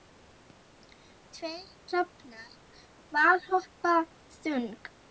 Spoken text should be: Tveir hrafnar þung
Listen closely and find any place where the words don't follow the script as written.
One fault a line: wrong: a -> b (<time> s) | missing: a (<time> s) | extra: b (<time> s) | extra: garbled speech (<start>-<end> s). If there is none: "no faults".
extra: valhoppa (3.2 s)